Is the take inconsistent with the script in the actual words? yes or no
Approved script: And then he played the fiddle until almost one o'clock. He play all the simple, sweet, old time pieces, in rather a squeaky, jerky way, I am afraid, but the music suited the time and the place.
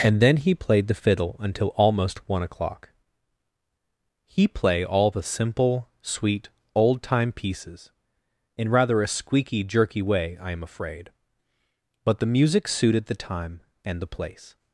no